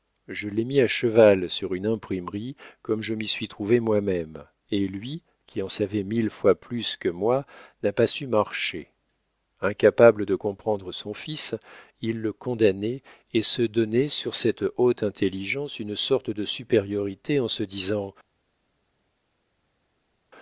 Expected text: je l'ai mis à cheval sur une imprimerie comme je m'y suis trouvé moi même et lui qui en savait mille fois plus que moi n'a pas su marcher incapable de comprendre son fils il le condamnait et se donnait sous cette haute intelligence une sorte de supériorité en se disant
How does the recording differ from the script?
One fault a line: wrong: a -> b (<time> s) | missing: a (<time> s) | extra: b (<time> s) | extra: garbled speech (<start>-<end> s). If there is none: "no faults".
wrong: sous -> sur (14.1 s)